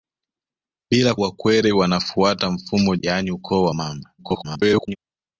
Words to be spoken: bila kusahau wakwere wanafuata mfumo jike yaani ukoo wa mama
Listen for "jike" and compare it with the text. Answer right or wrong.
wrong